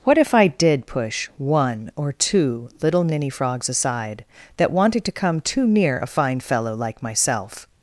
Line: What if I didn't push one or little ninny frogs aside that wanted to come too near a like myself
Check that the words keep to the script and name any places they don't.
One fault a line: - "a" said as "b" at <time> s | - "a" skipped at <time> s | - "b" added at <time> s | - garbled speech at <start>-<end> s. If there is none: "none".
- "didn't" said as "did" at 0.5 s
- "two" added at 2.1 s
- "fine fellow" added at 6.1 s